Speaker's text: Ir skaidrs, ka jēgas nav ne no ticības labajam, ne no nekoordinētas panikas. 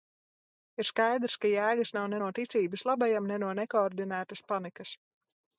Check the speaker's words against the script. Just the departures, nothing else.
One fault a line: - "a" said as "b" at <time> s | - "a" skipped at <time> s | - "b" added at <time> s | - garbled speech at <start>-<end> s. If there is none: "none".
none